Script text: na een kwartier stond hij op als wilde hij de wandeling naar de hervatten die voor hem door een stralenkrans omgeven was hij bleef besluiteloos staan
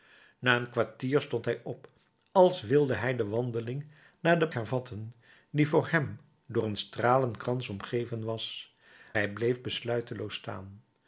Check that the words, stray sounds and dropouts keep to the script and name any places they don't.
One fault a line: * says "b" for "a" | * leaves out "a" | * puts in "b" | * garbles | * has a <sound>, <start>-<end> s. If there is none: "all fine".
all fine